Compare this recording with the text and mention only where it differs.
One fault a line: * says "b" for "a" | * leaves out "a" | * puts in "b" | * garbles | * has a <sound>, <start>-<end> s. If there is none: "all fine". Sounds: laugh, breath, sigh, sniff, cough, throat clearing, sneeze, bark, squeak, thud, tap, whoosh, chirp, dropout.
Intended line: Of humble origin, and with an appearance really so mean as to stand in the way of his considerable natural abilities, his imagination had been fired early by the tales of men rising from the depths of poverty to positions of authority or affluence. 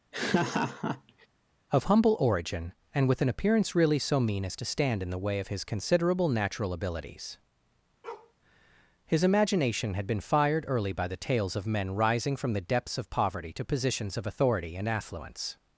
* has a laugh, 0.1-1.3 s
* has a bark, 8.0-8.3 s
* says "and" for "or"